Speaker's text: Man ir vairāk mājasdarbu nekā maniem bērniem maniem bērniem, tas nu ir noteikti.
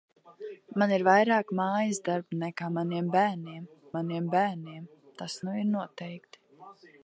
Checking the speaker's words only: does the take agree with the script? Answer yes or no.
yes